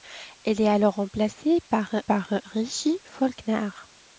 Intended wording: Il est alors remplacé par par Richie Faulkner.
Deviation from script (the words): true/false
false